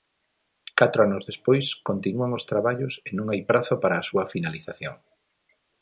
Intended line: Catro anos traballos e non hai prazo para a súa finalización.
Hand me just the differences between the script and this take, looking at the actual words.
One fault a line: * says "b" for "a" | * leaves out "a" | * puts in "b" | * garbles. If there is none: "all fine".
* puts in "despois continúan os"